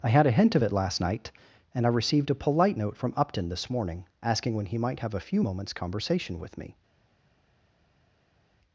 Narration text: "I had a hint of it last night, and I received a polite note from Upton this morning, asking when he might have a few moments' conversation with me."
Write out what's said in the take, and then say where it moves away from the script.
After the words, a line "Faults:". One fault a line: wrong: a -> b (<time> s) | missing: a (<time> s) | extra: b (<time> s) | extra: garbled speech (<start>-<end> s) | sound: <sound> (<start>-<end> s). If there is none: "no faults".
"I had a hint of it last night, and I received a polite note from Upton this morning, asking when he might have a few moments' conversation with me."
Faults:
no faults